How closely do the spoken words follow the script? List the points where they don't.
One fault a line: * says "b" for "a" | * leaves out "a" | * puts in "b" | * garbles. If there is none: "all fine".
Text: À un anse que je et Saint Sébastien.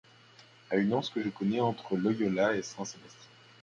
* says "une" for "un"
* puts in "connais entre Loyola"